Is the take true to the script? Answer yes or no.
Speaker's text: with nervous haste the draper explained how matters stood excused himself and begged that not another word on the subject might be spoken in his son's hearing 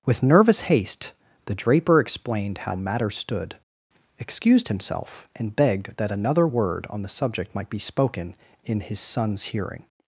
no